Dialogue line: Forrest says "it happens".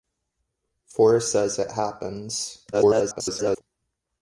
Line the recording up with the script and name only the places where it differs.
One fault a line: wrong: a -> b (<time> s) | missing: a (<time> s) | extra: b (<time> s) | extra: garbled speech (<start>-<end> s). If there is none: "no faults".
extra: garbled speech (2.7-3.6 s)